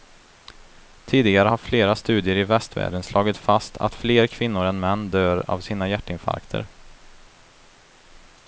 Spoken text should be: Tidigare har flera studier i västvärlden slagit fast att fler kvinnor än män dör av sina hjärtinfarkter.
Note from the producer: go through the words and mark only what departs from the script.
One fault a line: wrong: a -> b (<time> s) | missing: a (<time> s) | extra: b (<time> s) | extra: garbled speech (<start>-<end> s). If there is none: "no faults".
no faults